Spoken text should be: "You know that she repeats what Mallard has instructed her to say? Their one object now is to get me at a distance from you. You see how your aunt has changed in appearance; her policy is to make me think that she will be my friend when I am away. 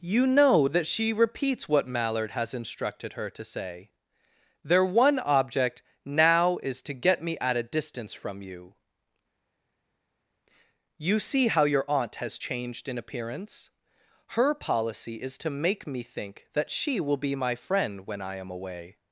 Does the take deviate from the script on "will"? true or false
false